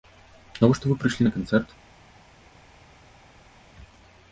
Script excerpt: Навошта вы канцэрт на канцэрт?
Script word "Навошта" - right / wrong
right